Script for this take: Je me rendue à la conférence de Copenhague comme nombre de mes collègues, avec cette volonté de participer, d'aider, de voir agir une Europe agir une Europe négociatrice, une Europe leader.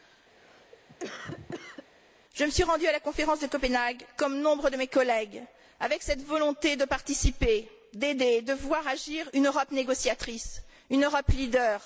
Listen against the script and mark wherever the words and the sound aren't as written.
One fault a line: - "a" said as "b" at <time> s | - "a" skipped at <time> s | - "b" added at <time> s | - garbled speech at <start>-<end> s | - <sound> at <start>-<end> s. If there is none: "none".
- cough at 0.4-1.9 s
- "suis" added at 2.5 s
- "agir une Europe" skipped at 9.7 s